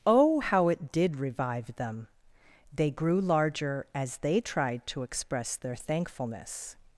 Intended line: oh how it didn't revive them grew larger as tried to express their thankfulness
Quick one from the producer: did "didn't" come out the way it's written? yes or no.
no